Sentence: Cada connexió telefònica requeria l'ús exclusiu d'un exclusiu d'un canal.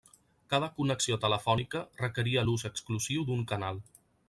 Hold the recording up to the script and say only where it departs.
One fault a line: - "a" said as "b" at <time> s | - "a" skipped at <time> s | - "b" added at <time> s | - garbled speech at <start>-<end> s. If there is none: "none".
- "exclusiu d'un" skipped at 3.4 s